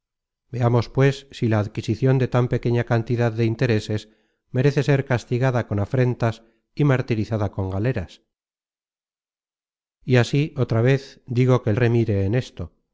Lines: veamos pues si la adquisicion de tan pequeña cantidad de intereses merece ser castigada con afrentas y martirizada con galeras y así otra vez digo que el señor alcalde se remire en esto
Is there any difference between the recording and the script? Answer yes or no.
yes